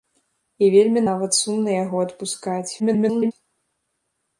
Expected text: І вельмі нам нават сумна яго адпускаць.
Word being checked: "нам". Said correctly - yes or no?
no